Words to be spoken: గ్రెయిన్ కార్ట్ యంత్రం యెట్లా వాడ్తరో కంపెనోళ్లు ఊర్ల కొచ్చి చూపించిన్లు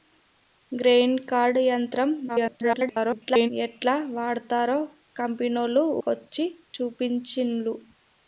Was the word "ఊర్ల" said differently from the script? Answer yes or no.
yes